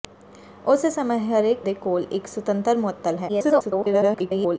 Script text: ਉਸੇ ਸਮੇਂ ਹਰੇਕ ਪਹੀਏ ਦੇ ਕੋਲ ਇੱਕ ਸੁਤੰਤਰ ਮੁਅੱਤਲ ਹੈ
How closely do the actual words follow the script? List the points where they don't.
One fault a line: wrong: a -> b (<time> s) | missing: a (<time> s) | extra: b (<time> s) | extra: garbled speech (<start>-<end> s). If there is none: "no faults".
missing: ਪਹੀਏ (1.6 s)
extra: garbled speech (3.3-4.6 s)